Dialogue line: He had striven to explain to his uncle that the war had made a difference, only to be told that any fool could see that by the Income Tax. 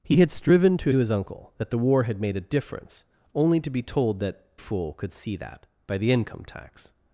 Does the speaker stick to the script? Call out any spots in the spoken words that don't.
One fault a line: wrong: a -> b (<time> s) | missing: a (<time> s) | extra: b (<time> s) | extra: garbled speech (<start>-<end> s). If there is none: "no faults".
missing: explain (0.9 s)
missing: any (4.5 s)